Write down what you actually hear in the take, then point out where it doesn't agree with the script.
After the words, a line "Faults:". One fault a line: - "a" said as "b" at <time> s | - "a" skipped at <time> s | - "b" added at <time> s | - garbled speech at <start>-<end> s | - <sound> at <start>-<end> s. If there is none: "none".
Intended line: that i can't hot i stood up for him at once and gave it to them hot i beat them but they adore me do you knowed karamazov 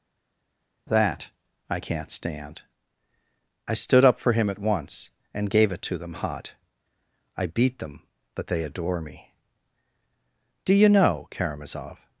that i can't stand i stood up for him at once and gave it to them hot i beat them but they adore me do you know karamazov
Faults:
- "hot" said as "stand" at 2.1 s
- "knowed" said as "know" at 10.9 s